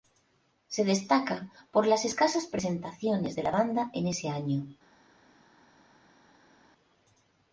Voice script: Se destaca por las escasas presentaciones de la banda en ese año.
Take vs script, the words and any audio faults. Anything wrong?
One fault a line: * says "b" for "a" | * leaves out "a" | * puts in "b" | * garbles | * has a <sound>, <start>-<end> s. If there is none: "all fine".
all fine